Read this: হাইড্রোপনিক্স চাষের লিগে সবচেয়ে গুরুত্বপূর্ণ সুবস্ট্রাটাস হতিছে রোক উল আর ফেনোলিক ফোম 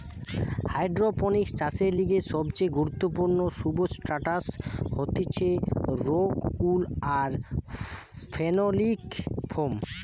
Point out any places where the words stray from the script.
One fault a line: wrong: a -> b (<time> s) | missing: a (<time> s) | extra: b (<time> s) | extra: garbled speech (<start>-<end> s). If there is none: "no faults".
no faults